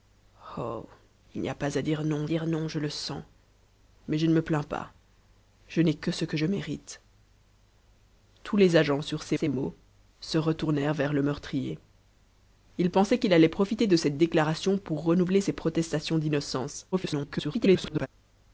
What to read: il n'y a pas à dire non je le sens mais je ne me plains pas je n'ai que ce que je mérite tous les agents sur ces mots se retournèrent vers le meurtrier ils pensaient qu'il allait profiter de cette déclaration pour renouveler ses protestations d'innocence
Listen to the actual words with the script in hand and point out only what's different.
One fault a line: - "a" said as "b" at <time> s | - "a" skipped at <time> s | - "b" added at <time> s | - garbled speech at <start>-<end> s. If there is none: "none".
- "dire non" added at 2.3 s
- "ces" added at 9.3 s
- garbled speech at 16.9-18.1 s